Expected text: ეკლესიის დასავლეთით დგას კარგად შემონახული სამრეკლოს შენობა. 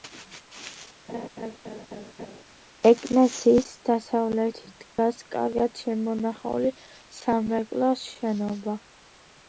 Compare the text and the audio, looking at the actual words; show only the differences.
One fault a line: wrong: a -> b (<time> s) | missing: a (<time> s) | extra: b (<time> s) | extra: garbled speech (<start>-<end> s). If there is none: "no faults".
no faults